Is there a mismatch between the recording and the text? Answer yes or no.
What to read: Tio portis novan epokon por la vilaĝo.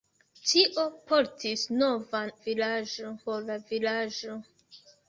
yes